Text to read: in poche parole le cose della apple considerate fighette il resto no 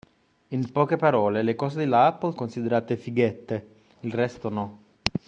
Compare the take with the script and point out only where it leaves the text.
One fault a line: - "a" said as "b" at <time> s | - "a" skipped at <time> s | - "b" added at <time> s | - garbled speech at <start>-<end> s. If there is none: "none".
none